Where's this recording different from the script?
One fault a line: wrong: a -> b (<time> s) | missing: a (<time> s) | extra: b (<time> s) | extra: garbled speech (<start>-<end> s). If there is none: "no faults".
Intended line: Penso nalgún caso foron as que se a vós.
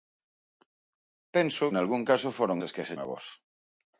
no faults